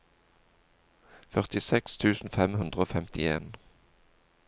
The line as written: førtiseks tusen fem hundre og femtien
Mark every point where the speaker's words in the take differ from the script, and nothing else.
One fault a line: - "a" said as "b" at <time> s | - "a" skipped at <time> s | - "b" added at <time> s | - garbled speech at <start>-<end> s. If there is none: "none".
none